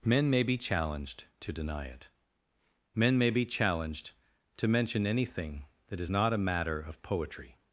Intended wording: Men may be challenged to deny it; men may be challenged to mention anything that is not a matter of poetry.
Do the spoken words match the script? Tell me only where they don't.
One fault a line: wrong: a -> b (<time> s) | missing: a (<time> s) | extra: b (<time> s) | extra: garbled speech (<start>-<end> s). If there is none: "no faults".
no faults